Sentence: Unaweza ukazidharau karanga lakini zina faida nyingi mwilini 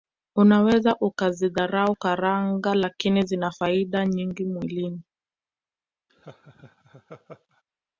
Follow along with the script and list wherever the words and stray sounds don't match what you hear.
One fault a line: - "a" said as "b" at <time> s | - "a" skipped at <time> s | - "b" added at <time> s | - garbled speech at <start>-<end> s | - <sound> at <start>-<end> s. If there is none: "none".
- laugh at 6.1-7.6 s